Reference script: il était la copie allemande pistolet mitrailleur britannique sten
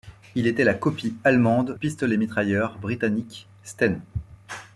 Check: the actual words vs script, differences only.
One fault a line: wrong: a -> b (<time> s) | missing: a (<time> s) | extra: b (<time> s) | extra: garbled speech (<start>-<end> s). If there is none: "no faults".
no faults